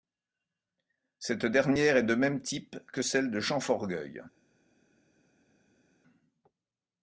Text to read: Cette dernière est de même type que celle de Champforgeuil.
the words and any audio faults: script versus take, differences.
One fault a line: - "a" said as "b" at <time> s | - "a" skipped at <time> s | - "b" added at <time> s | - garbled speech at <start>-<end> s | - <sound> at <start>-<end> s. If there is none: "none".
none